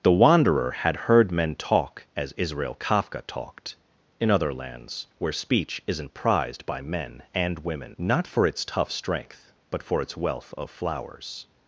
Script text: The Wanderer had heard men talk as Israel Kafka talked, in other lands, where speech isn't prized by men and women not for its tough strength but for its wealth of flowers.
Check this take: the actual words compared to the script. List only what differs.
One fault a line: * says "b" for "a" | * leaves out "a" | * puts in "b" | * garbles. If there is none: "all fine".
all fine